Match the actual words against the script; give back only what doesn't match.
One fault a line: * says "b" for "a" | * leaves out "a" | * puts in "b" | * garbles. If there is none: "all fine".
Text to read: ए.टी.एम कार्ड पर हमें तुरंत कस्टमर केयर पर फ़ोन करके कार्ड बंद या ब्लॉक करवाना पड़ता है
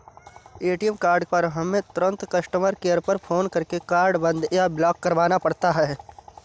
all fine